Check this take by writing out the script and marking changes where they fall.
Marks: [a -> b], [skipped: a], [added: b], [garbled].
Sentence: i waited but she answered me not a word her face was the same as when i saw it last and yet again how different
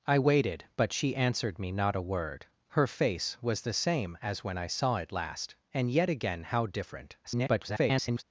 i waited but she answered me not a word her face was the same as when i saw it last and yet again how different [garbled]